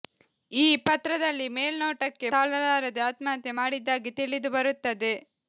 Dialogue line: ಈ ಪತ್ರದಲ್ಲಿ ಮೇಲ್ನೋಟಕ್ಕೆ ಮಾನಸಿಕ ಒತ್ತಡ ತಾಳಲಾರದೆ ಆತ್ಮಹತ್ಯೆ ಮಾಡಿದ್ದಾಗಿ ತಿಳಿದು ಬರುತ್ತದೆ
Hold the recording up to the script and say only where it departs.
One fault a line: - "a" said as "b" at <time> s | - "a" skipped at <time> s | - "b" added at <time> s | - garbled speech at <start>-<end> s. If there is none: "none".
- "ಮಾನಸಿಕ ಒತ್ತಡ" skipped at 2.3 s